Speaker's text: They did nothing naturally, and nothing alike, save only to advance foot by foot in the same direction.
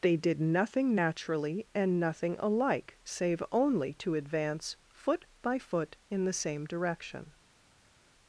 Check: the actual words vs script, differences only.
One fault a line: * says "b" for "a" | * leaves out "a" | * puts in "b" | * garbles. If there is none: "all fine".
all fine